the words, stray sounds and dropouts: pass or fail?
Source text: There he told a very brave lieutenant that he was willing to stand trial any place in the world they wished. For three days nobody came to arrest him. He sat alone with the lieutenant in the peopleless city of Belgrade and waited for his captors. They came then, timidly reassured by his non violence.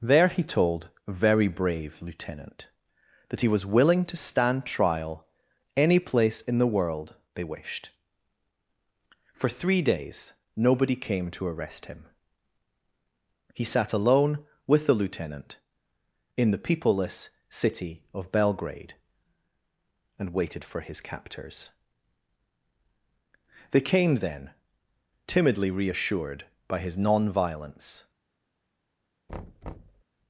fail